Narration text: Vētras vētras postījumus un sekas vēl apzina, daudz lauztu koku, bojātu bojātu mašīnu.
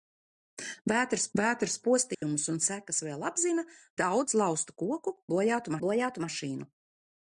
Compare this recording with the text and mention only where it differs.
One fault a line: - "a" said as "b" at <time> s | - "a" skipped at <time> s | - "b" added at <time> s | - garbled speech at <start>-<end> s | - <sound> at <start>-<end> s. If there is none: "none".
- dropout at 2.1-2.2 s